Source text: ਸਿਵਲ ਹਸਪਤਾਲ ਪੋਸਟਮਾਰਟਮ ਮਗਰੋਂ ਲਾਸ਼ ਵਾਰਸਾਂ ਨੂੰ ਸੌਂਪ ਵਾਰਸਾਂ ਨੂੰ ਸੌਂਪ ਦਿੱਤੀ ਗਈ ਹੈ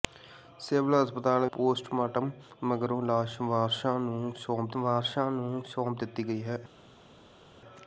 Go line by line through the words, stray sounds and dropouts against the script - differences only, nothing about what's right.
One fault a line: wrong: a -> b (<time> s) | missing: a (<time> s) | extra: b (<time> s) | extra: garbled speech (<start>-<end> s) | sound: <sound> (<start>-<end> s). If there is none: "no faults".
no faults